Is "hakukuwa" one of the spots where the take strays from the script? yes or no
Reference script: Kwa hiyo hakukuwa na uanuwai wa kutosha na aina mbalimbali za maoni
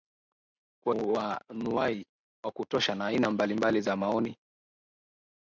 yes